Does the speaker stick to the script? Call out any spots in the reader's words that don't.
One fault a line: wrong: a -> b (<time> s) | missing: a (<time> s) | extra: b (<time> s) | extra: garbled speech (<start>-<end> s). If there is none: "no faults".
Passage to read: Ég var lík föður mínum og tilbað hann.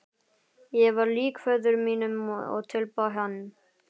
no faults